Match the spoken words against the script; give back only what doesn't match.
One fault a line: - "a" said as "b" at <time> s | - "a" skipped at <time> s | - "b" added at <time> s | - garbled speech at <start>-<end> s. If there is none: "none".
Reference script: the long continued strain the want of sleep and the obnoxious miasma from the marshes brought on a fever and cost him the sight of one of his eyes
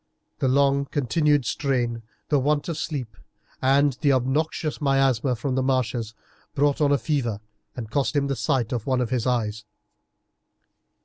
none